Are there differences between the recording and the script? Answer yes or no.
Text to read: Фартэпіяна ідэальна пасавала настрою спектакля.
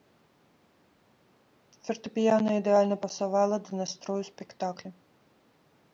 yes